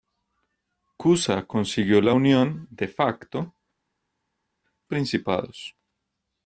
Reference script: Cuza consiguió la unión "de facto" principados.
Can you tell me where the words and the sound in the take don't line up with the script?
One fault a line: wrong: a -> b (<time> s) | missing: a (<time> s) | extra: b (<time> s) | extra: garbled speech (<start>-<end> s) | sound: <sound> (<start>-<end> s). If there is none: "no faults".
no faults